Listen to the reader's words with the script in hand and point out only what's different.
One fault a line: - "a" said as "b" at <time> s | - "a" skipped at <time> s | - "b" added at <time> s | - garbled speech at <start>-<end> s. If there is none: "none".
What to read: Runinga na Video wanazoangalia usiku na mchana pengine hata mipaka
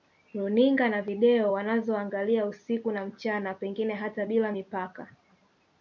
- "bila" added at 4.2 s